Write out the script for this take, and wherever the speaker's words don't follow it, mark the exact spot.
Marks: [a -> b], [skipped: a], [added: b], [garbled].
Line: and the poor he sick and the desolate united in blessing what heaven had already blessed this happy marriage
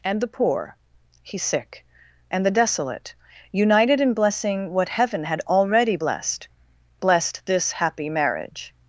and the poor he sick and the desolate united in blessing what heaven had already blessed [added: blessed] this happy marriage